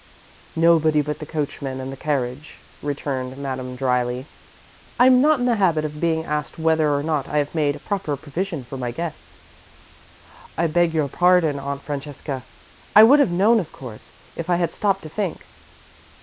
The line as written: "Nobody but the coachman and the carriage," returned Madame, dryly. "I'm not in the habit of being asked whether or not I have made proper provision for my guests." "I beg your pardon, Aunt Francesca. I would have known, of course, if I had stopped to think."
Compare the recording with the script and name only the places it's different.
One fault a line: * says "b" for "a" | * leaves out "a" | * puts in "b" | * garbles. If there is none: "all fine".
all fine